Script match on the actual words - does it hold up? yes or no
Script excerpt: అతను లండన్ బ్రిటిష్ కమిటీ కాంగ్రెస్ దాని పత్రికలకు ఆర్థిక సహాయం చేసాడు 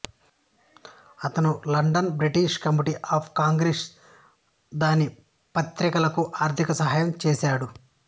no